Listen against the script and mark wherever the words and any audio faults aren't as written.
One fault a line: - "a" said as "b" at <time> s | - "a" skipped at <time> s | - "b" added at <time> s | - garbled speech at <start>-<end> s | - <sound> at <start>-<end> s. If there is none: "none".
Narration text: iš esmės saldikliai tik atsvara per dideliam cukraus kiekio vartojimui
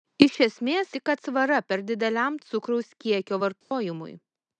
- "saldikliai" skipped at 0.9 s
- dropout at 3.6-3.7 s